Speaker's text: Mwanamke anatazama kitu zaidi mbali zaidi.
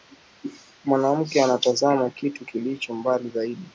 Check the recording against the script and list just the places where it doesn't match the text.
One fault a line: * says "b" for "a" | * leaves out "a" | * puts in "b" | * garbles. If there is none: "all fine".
* says "kilicho" for "zaidi"